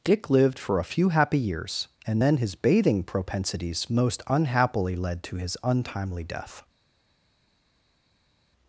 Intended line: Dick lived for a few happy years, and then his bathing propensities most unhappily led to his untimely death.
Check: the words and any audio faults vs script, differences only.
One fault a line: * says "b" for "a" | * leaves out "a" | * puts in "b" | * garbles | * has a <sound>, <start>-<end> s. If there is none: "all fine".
all fine